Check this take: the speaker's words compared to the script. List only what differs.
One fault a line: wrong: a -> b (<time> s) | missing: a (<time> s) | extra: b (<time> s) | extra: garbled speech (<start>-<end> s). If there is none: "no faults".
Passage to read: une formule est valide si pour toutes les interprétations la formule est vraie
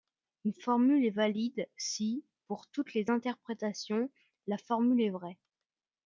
no faults